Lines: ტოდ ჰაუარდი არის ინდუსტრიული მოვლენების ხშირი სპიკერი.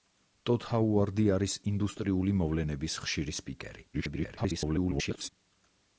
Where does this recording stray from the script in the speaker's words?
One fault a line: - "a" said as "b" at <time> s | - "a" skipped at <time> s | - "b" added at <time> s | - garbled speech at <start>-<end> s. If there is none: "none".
- garbled speech at 3.9-5.3 s